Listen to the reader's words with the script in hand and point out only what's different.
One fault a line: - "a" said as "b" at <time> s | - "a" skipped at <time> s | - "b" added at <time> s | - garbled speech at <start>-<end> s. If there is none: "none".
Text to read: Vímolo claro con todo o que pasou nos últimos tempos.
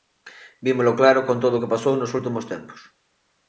none